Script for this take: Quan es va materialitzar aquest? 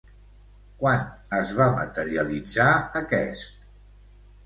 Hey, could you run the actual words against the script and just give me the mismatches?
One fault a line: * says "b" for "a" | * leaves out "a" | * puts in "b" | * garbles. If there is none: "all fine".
all fine